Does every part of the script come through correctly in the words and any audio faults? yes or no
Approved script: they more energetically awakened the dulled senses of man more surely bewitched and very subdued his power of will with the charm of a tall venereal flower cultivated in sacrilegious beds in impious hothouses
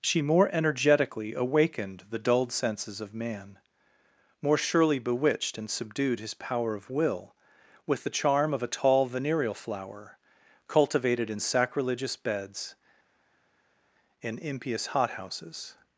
no